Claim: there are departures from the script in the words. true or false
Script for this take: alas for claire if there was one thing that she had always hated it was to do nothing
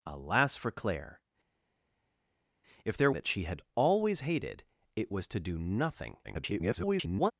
true